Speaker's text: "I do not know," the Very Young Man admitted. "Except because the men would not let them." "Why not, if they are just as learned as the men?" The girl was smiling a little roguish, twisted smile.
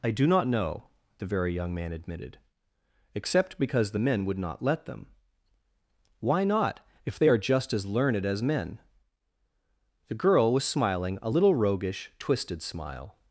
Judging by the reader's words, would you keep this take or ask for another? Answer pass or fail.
fail